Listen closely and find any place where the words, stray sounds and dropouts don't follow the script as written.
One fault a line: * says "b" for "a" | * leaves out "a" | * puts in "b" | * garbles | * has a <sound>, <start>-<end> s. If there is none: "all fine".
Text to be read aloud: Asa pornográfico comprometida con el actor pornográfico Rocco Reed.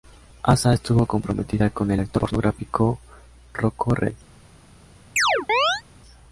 * says "estuvo" for "pornográfico"
* has a chirp, 5.2-5.8 s